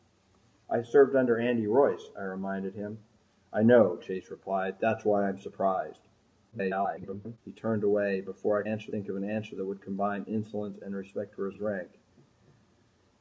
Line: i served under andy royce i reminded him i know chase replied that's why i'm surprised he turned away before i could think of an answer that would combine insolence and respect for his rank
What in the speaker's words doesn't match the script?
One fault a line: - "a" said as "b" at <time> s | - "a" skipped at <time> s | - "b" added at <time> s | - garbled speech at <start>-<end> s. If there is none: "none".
- garbled speech at 6.5-7.4 s
- "could" said as "answer" at 8.7 s
- "his" added at 11.5 s